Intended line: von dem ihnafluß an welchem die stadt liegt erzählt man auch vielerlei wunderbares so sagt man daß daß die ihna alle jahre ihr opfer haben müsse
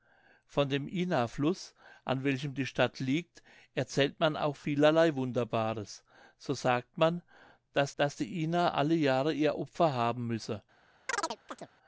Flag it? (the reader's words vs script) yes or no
no